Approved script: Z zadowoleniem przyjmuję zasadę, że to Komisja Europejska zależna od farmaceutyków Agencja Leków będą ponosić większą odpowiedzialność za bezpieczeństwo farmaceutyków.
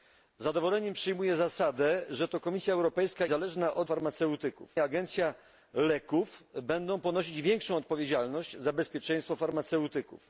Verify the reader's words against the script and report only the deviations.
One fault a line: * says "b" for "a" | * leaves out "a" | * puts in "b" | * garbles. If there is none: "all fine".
all fine